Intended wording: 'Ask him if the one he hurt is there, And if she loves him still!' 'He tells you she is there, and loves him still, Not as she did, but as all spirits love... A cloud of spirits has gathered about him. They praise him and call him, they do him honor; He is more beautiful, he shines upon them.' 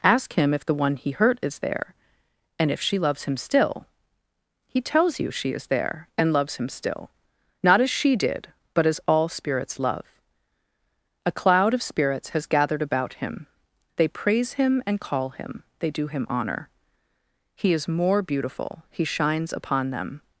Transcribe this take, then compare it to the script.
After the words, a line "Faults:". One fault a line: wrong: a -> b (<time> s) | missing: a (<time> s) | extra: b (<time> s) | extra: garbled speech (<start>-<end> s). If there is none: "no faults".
'Ask him if the one he hurt is there, And if she loves him still!' 'He tells you she is there, and loves him still, Not as she did, but as all spirits love... A cloud of spirits has gathered about him. They praise him and call him, they do him honor; He is more beautiful, he shines upon them.'
Faults:
no faults